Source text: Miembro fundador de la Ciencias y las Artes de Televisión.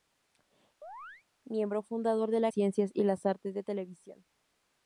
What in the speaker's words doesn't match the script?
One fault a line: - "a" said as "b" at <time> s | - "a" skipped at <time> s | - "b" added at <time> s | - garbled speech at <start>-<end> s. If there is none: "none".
none